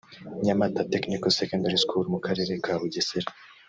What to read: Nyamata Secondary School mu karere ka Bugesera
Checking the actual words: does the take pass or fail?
fail